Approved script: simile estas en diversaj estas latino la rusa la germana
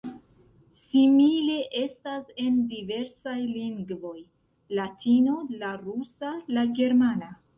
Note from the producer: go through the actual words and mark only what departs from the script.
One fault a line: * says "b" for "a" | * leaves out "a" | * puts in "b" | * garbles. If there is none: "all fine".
* says "lingvoj" for "estas"